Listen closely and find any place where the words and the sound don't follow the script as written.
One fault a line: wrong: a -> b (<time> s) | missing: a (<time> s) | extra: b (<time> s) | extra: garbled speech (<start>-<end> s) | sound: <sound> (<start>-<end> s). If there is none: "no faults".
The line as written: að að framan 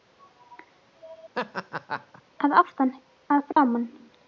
sound: laugh (1.3-2.2 s)
extra: aftan (2.6 s)
sound: dropout (3.5-3.6 s)